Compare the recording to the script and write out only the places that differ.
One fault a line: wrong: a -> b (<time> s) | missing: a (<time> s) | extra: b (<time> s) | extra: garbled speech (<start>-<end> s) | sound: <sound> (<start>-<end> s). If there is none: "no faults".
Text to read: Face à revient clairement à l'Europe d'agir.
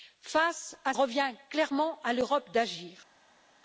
no faults